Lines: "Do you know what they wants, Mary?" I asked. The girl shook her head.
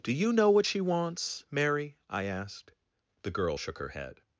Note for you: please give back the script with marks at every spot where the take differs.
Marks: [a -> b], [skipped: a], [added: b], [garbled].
"Do you know what [they -> she] wants, Mary?" I asked. The girl shook her head.